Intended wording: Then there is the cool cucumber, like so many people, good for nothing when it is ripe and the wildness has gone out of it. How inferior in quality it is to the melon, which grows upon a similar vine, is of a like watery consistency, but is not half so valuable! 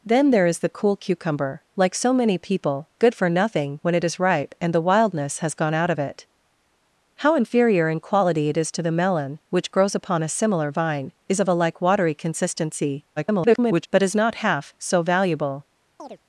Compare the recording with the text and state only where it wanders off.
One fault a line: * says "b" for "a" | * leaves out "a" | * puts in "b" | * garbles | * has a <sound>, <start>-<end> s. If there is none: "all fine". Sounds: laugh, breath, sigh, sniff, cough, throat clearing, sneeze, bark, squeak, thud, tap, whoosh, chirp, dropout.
* garbles
* has a chirp, 16.0-16.2 s